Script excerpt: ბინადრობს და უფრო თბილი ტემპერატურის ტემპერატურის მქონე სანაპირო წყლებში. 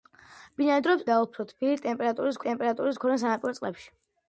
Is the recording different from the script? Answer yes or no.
no